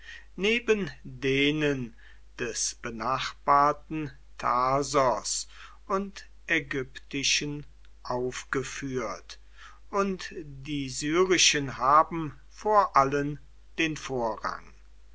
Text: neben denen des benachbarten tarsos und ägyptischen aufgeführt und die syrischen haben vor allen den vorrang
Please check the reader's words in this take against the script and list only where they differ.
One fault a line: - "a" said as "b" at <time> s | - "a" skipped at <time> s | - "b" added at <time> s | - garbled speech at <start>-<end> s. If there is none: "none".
none